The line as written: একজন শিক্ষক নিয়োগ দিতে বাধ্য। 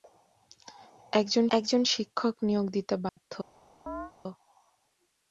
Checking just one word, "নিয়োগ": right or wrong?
right